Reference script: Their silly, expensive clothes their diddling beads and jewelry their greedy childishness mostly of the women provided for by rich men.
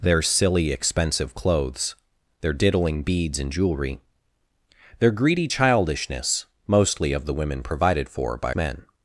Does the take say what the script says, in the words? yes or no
no